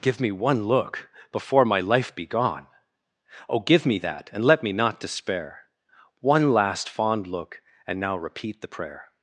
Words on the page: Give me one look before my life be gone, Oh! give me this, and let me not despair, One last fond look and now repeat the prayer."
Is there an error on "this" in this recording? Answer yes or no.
yes